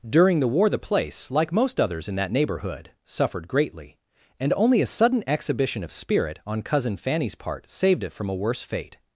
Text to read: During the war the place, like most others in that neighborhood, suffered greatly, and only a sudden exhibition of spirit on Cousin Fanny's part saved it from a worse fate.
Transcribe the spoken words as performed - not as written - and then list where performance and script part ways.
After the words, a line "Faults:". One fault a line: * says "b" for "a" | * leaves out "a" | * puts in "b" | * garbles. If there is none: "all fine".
During the war the place, like most others in that neighborhood, suffered greatly, and only a sudden exhibition of spirit on Cousin Fanny's part saved it from a worse fate.
Faults:
all fine